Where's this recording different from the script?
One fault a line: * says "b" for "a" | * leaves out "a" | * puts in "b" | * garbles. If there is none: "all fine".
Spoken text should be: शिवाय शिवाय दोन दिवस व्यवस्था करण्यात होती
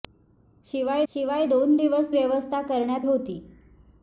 all fine